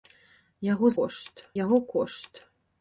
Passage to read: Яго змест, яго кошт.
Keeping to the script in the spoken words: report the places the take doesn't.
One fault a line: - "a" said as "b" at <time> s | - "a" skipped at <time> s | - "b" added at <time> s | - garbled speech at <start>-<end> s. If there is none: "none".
- "змест" said as "кошт" at 1.0 s